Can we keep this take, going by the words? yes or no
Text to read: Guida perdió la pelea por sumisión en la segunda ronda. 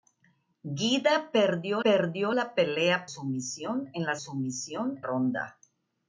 no